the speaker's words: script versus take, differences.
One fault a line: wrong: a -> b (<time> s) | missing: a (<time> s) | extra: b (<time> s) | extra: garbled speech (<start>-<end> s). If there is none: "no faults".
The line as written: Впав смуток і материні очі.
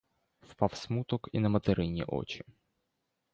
extra: на (1.4 s)